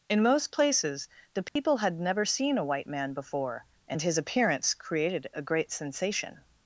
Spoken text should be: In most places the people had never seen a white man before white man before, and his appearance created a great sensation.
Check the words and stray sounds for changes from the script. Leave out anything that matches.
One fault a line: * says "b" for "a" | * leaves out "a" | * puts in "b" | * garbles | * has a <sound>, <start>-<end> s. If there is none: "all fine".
* has a dropout, 1.5-1.6 s
* leaves out "white man before"